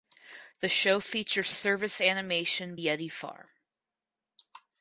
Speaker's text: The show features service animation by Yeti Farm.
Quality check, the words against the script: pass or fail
fail